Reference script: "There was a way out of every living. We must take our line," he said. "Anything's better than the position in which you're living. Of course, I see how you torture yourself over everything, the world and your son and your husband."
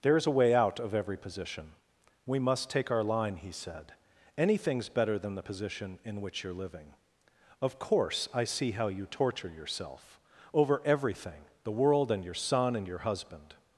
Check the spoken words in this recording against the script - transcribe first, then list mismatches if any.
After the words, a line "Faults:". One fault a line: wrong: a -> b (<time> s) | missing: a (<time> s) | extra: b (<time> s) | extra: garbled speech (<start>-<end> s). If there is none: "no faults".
"There is a way out of every position. We must take our line," he said. "Anything's better than the position in which you're living. Of course, I see how you torture yourself over everything, the world and your son and your husband."
Faults:
wrong: was -> is (0.2 s)
wrong: living -> position (1.2 s)